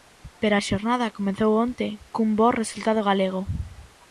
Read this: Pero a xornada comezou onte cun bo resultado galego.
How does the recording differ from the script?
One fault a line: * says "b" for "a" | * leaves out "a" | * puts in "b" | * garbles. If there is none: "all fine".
all fine